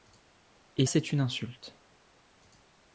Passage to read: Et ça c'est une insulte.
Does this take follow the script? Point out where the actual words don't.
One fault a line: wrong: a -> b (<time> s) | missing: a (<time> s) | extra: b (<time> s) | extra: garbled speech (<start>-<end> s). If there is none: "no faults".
missing: ça (0.9 s)